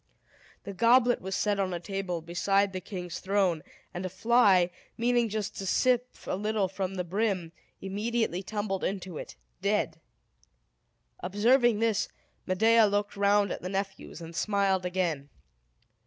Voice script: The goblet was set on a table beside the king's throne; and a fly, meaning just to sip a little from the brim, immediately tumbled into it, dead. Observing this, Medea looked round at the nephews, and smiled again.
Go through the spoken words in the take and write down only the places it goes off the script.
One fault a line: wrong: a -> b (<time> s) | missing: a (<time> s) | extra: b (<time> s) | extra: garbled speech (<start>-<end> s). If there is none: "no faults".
no faults